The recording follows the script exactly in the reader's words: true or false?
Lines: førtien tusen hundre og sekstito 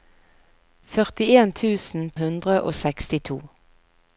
true